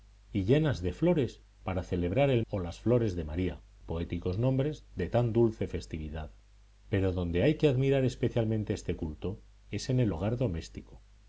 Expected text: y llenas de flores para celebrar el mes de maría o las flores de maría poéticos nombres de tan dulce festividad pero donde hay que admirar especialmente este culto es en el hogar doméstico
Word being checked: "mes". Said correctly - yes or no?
no